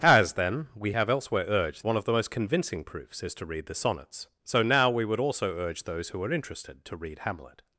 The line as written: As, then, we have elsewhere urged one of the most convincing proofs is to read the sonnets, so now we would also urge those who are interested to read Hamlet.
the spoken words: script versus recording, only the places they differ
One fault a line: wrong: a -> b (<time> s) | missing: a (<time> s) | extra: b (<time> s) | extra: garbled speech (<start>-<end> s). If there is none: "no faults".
no faults